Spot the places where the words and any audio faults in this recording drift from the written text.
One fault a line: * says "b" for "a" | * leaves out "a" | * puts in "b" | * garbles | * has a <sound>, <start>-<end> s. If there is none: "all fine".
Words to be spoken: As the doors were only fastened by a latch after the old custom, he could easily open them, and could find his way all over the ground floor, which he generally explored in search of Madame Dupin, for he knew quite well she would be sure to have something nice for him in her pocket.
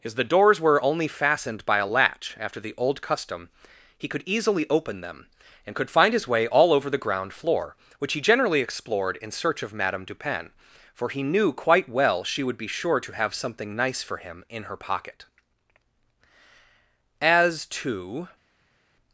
* puts in "As to"